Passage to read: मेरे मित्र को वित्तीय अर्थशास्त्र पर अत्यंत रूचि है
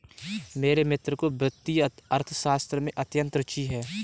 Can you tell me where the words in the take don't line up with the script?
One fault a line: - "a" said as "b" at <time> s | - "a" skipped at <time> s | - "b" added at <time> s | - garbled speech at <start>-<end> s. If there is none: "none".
- "पर" said as "में" at 2.8 s